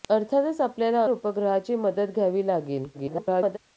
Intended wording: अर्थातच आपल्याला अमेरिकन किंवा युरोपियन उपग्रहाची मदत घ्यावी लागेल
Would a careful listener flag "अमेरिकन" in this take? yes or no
yes